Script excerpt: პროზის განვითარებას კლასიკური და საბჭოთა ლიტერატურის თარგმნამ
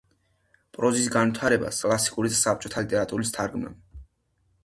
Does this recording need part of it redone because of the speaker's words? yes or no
no